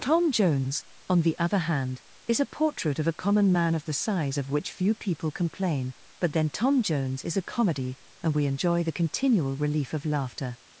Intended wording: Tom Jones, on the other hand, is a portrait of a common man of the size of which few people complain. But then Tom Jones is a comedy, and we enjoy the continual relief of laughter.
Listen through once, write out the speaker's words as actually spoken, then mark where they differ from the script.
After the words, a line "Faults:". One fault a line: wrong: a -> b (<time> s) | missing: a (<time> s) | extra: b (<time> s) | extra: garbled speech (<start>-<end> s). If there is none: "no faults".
Tom Jones, on the other hand, is a portrait of a common man of the size of which few people complain. But then Tom Jones is a comedy, and we enjoy the continual relief of laughter.
Faults:
no faults